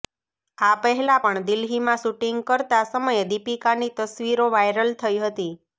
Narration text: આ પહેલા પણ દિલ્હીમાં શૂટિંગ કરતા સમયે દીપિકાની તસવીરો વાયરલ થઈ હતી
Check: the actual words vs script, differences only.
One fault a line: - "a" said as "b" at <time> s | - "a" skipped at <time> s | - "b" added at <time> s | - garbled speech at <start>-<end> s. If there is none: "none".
none